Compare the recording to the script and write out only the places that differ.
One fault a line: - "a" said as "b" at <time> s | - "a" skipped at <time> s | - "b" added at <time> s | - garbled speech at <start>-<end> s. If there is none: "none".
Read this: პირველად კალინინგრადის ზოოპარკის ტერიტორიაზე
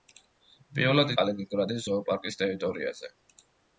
none